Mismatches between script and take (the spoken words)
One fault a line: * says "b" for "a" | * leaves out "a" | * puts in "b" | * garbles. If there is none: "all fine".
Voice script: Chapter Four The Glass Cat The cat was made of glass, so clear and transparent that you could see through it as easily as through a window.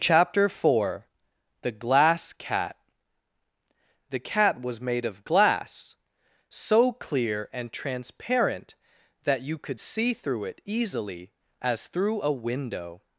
* leaves out "as"